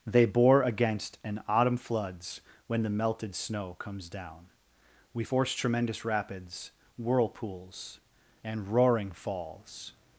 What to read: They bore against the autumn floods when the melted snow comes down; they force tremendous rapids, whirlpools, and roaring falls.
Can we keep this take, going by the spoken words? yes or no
no